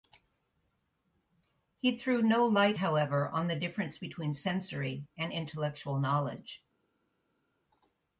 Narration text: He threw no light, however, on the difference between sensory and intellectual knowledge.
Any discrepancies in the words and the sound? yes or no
no